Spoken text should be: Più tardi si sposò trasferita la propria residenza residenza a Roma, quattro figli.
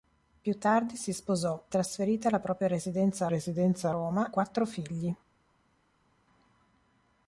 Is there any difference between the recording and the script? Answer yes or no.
no